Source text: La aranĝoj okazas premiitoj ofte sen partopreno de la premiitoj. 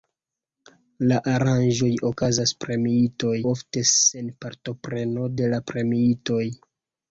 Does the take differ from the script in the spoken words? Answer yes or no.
no